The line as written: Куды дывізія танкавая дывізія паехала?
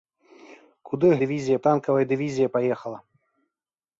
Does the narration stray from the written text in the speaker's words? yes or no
no